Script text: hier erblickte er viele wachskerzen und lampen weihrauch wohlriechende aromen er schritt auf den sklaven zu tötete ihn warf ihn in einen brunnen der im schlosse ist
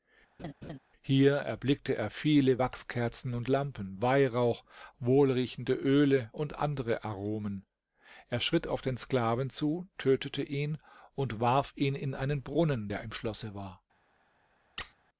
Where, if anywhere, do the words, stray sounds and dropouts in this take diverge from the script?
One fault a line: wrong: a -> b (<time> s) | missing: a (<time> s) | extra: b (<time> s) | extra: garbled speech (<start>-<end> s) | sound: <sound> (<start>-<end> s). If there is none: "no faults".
sound: laugh (0.4-0.8 s)
extra: öle und andere (5.7 s)
extra: und (11.1 s)
wrong: ist -> war (13.5 s)
sound: squeak (14.8-14.9 s)